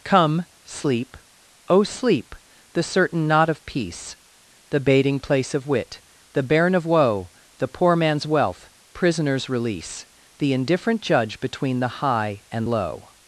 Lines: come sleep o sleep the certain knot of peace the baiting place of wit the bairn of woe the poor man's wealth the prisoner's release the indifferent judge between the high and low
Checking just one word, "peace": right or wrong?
right